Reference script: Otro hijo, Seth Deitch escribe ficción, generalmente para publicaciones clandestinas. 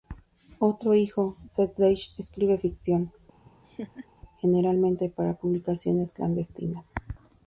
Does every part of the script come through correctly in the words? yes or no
yes